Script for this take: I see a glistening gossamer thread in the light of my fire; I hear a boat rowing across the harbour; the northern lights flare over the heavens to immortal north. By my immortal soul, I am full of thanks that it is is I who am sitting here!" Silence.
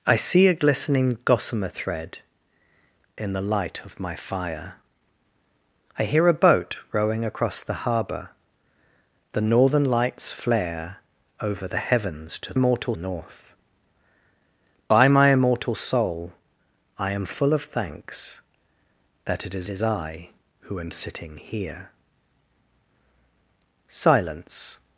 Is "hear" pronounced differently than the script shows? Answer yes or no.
no